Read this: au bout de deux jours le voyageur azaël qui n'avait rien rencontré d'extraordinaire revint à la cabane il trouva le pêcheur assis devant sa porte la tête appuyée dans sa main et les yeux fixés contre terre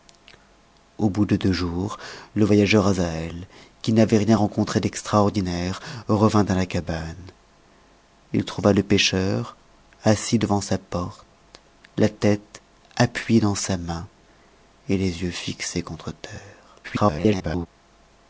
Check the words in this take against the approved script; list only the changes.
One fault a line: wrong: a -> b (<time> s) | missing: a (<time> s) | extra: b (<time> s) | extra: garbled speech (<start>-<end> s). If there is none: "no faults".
extra: garbled speech (16.8-17.7 s)